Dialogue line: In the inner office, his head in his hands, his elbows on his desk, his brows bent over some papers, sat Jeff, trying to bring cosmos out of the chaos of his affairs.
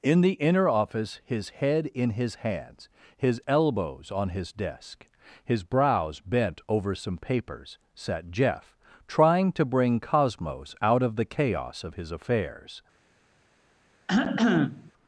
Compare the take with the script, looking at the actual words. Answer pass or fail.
pass